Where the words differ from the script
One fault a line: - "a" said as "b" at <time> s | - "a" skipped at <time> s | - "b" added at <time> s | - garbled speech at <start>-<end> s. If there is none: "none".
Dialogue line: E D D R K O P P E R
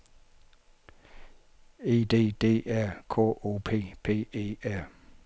none